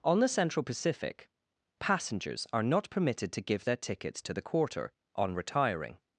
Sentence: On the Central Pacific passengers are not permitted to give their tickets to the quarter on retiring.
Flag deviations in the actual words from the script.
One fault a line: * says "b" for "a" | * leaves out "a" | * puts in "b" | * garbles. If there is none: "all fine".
all fine